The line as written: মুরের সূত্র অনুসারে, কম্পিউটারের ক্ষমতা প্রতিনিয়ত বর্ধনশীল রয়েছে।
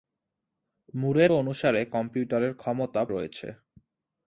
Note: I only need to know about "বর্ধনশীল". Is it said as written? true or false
false